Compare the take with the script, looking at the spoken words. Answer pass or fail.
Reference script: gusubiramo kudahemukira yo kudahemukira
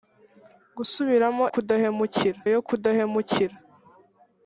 pass